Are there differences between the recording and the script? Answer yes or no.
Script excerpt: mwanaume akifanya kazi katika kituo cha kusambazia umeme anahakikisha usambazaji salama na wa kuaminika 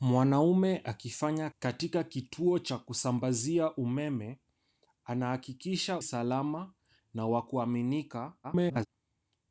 yes